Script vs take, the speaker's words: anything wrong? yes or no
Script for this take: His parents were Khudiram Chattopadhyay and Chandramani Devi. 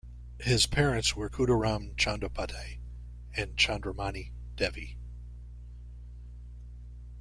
no